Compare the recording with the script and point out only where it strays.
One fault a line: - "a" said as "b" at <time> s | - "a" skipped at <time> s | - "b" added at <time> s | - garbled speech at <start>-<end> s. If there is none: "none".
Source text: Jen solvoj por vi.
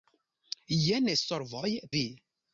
- "por" skipped at 1.7 s